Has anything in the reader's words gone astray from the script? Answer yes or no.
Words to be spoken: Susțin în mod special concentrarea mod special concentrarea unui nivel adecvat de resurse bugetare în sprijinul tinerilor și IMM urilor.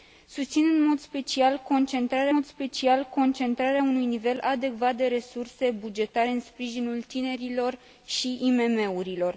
no